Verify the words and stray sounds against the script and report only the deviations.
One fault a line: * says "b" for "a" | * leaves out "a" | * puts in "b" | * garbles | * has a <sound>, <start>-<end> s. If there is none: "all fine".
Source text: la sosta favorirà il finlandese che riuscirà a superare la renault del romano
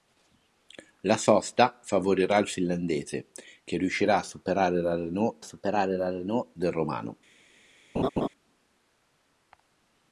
* puts in "superare la renault"
* has a laugh, 8.0-8.3 s